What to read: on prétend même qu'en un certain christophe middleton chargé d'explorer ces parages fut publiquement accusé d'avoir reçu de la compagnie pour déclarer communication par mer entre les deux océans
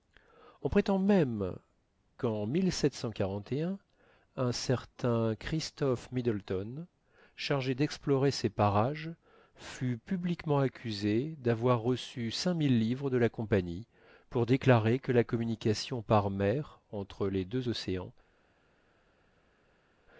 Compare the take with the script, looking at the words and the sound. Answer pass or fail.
fail